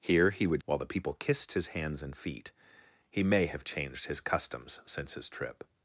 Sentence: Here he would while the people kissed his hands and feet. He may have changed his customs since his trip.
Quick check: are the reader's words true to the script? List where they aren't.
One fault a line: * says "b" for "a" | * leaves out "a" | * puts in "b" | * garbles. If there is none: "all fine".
all fine